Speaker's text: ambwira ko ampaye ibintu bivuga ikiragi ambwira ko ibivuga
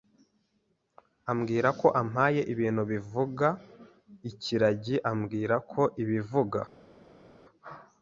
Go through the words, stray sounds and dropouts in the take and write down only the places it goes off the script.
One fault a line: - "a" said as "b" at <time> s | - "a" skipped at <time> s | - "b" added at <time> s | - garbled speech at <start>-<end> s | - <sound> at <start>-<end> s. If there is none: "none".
none